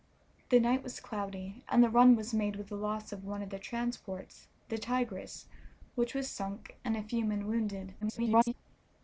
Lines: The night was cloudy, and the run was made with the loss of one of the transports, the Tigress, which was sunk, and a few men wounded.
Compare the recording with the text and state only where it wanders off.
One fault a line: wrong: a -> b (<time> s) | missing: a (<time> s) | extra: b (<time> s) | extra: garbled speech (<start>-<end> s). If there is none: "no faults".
extra: garbled speech (8.0-8.5 s)